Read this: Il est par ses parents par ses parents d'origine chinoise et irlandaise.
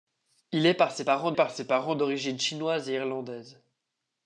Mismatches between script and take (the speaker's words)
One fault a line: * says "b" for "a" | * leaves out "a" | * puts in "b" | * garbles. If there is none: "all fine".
all fine